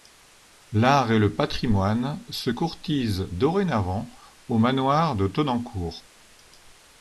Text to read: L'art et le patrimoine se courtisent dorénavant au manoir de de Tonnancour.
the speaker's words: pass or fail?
fail